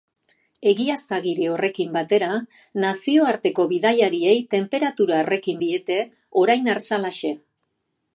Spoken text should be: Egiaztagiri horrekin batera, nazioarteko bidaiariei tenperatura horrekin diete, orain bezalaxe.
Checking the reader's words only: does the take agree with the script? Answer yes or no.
yes